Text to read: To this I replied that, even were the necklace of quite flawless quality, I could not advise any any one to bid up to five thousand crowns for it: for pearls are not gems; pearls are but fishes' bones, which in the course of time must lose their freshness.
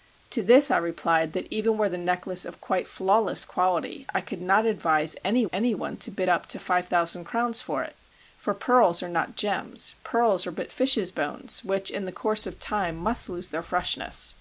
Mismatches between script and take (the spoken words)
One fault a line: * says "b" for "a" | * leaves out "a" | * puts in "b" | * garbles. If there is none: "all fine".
all fine